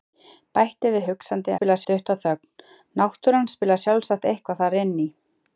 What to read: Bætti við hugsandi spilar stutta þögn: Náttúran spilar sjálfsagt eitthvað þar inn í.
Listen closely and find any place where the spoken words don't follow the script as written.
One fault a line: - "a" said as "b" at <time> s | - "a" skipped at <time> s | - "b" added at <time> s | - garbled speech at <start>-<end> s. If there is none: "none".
none